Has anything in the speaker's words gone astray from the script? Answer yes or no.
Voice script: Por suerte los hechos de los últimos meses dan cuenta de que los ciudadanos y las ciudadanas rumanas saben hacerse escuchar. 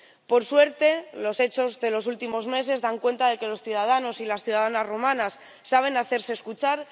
no